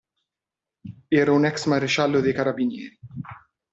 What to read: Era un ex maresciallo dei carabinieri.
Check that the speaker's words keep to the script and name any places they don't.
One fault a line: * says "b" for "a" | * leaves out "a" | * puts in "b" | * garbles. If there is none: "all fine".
all fine